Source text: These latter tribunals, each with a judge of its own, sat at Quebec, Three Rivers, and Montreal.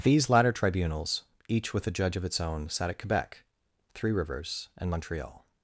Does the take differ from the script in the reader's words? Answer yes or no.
no